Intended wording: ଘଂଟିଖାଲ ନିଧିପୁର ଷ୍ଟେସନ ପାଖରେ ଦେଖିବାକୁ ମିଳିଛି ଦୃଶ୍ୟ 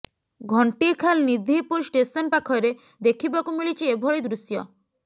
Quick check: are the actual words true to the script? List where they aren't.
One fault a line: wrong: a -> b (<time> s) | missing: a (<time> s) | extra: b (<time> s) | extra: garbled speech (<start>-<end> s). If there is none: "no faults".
extra: ଏଭଳି (4.0 s)